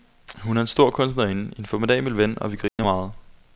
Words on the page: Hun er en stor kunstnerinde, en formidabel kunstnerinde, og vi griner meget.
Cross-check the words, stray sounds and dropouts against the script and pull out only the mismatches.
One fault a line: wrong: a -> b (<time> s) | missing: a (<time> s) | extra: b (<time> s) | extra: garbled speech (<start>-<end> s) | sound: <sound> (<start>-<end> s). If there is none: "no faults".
wrong: kunstnerinde -> ven (2.2 s)
sound: dropout (2.7-2.8 s)